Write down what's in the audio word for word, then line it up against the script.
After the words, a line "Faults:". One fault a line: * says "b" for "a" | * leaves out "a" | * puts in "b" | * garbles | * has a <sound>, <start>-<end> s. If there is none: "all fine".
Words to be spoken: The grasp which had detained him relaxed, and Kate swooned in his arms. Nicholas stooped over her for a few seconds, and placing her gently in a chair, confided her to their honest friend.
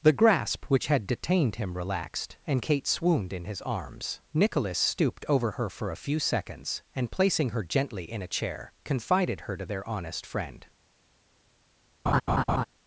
The grasp which had detained him relaxed, and Kate swooned in his arms. Nicholas stooped over her for a few seconds, and placing her gently in a chair, confided her to their honest friend.
Faults:
* has a laugh, 12.1-12.6 s